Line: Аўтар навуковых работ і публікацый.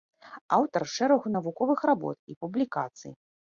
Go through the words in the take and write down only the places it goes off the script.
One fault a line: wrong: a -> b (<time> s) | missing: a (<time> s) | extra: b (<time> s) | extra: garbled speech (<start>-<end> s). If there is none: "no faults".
extra: шэрагу (0.9 s)